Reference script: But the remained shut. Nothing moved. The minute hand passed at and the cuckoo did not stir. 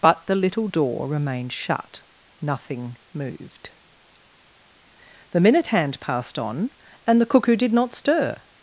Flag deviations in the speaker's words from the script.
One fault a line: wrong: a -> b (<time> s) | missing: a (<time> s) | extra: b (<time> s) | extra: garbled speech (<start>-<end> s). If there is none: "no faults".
extra: little door (0.3 s)
wrong: at -> on (6.4 s)